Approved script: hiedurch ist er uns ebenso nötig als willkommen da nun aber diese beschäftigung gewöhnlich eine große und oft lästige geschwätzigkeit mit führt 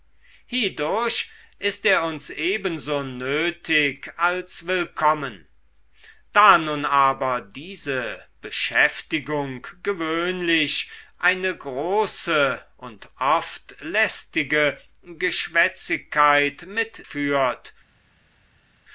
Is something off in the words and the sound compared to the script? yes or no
no